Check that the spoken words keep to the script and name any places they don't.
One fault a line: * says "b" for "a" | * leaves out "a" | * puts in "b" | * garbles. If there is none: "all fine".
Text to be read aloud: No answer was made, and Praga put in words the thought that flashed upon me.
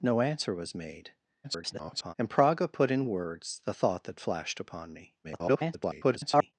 * garbles
* garbles